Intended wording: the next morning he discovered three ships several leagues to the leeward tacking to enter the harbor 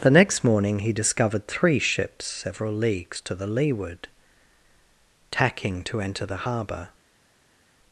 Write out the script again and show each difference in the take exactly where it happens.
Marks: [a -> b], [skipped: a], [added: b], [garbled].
the next morning he discovered three ships several leagues to the leeward tacking to enter the harbor